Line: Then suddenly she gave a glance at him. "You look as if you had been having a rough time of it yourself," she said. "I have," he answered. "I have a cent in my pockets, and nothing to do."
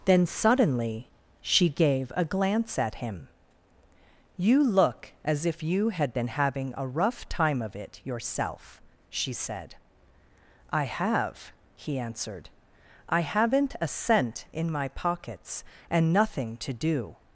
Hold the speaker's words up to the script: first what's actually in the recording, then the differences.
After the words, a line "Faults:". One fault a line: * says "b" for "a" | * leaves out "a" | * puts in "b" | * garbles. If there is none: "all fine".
Then suddenly she gave a glance at him. "You look as if you had been having a rough time of it yourself," she said. "I have," he answered. "I haven't a cent in my pockets, and nothing to do."
Faults:
* says "haven't" for "have"